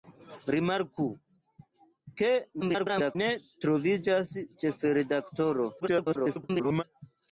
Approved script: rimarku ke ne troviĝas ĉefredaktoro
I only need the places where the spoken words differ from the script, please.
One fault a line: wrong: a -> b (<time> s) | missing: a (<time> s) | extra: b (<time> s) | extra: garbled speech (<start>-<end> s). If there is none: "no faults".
extra: garbled speech (2.6-3.2 s)
extra: garbled speech (5.8-6.8 s)